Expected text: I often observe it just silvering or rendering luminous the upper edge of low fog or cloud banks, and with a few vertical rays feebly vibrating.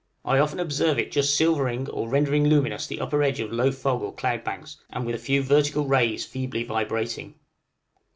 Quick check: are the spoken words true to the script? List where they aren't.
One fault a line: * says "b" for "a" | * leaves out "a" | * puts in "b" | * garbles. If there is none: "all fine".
all fine